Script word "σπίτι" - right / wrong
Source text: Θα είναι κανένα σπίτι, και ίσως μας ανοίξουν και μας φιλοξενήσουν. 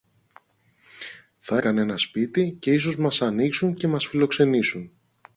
right